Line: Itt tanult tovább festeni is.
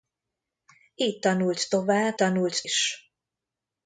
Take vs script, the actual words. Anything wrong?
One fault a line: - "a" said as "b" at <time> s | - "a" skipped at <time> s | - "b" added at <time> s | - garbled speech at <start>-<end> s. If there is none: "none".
- "festeni" said as "tanult" at 2.2 s